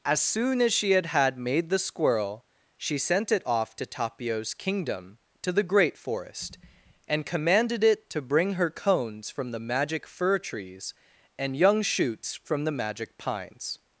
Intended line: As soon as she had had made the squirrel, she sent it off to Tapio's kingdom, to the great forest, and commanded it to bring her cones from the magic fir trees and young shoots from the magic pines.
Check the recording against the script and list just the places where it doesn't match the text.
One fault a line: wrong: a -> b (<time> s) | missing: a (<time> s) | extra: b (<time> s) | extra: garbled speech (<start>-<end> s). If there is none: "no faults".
no faults